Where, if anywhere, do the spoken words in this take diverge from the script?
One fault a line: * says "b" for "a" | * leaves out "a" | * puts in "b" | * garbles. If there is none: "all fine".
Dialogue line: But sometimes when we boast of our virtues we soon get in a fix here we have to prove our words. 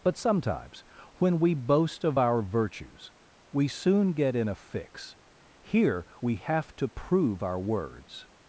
all fine